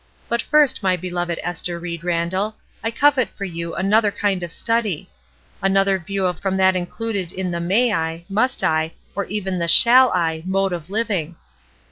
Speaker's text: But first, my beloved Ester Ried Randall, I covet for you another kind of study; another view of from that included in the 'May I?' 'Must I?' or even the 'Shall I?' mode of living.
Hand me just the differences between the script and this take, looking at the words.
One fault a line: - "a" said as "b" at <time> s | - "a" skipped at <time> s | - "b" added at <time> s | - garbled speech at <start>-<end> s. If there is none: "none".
none